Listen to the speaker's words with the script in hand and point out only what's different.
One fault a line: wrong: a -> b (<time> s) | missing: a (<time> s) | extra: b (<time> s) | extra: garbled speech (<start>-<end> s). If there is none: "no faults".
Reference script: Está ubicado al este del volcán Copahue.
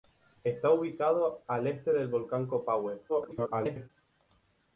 extra: garbled speech (3.1-3.9 s)